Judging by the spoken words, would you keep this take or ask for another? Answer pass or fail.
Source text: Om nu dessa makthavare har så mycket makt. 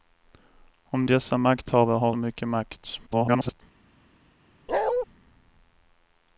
fail